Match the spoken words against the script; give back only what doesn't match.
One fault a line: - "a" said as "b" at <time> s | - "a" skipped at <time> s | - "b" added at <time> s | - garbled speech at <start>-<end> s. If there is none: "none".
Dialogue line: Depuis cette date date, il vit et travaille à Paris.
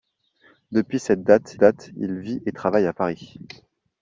none